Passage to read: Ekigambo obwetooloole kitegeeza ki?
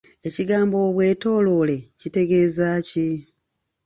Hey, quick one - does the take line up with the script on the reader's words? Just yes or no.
yes